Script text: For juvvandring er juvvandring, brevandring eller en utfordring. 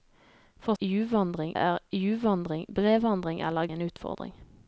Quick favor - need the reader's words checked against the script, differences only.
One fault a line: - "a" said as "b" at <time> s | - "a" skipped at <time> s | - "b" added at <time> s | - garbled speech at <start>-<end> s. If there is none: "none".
none